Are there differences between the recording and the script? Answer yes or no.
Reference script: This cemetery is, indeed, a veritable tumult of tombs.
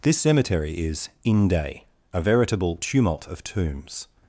yes